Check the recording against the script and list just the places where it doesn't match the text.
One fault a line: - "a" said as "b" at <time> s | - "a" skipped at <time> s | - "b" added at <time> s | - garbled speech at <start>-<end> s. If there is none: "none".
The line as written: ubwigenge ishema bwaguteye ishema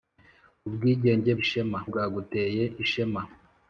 none